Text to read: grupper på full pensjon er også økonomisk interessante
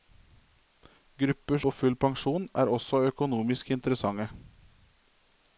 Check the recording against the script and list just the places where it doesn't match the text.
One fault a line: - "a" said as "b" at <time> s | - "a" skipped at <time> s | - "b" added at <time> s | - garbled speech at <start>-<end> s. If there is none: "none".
none